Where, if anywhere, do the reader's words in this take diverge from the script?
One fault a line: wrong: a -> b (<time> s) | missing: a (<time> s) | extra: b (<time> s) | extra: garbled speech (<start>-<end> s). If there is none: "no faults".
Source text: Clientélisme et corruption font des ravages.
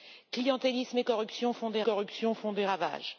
extra: corruption font des (1.8 s)